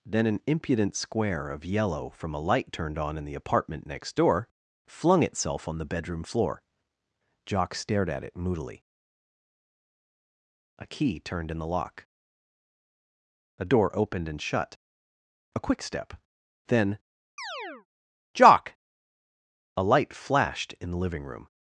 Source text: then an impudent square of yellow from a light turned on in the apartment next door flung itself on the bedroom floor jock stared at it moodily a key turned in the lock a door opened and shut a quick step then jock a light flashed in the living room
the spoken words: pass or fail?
pass